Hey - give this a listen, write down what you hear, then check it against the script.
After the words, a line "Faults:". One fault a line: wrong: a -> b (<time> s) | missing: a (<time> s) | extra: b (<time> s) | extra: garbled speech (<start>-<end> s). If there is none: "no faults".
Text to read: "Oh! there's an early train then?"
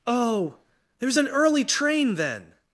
"Oh! there's an early train then?"
Faults:
no faults